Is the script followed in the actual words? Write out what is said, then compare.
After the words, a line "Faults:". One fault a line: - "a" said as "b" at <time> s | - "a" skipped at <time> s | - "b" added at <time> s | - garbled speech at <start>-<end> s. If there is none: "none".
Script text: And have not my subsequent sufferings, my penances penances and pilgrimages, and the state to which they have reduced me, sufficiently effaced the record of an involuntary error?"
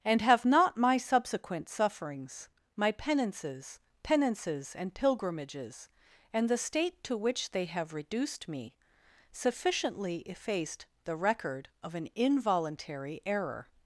And have not my subsequent sufferings, my penances penances and pilgrimages, and the state to which they have reduced me, sufficiently effaced the record of an involuntary error?"
Faults:
none